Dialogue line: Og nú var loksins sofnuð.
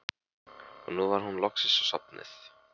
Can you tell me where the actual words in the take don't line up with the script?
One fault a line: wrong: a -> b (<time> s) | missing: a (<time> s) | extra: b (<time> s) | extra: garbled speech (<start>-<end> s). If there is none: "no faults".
extra: hún (1.3 s)